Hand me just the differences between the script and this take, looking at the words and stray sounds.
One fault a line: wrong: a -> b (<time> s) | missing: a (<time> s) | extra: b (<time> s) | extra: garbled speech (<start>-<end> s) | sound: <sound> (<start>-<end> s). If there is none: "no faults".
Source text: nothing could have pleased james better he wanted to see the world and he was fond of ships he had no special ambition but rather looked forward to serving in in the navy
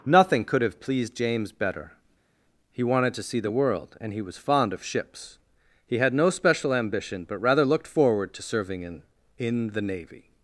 no faults